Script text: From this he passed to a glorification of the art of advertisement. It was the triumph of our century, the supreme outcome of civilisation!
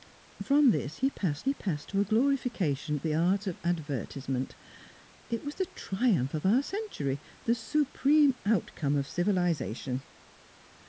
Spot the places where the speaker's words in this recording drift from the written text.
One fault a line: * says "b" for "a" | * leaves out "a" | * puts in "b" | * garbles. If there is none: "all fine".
* puts in "he passed"
* leaves out "of"